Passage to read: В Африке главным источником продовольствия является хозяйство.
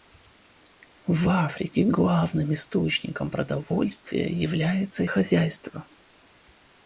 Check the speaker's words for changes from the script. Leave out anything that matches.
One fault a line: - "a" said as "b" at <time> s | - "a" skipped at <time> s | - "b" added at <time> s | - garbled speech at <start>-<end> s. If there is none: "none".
none